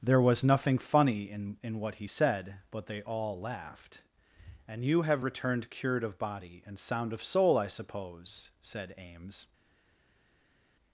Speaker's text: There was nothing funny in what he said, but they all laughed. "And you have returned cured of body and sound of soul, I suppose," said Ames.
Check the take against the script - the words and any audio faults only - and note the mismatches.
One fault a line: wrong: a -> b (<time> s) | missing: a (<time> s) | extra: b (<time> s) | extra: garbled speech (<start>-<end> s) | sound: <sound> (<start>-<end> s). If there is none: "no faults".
extra: in (1.6 s)